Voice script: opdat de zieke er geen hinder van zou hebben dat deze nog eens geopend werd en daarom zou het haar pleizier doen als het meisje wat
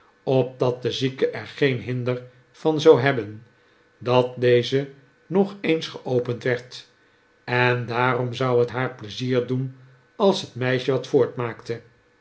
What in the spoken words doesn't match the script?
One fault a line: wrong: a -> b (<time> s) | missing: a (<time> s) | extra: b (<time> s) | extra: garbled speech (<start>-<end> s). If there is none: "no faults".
no faults